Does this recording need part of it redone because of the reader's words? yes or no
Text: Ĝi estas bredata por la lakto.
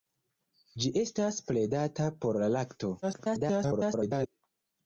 yes